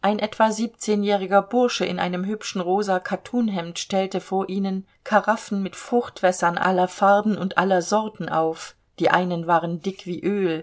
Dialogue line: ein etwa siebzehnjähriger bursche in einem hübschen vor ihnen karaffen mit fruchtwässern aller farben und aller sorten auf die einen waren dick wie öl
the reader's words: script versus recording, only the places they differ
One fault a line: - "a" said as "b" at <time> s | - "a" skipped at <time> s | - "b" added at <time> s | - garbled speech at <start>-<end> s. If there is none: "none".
- "rosa kattunhemd stellte" added at 2.6 s